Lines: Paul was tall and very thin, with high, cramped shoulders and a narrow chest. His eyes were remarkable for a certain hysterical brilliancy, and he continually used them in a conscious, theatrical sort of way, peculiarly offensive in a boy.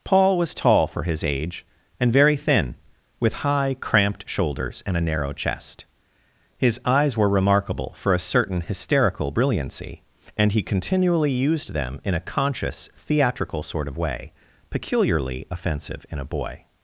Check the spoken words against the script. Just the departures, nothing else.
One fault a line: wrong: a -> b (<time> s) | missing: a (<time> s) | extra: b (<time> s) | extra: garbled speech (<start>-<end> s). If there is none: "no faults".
extra: for his age (0.9 s)